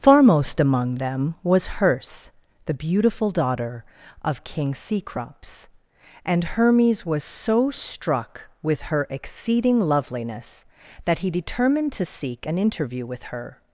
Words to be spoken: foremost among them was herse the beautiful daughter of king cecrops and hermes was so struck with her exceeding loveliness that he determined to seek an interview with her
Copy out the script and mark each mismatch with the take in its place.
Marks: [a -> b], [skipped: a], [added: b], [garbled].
foremost among them was herse the beautiful daughter of king cecrops and hermes was so struck with her exceeding loveliness that he determined to seek an interview with her